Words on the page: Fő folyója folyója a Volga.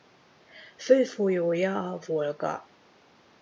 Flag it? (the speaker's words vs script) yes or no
yes